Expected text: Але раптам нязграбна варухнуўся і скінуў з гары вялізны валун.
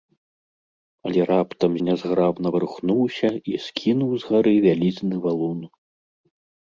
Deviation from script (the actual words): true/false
false